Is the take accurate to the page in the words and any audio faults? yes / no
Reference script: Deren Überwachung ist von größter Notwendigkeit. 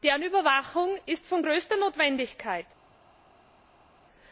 yes